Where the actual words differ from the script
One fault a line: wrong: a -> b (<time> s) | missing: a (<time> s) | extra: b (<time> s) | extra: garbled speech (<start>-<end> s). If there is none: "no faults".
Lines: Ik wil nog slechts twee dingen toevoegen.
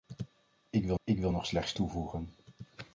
extra: ik wil (1.0 s)
missing: twee dingen (1.7 s)